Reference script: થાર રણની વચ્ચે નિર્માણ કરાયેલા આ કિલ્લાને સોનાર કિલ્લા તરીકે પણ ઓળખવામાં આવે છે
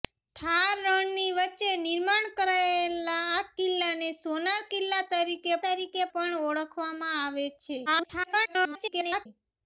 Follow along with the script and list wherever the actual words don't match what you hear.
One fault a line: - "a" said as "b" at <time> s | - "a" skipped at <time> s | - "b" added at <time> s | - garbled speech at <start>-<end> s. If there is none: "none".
- "તરીકે" added at 5.6 s
- garbled speech at 7.9-9.3 s